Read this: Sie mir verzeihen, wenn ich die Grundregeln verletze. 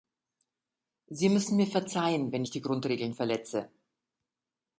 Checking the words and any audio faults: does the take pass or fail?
fail